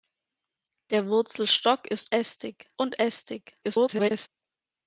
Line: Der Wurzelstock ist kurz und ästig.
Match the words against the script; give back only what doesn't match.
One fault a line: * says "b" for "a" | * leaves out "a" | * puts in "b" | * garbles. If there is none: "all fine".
* says "ästig" for "kurz"
* garbles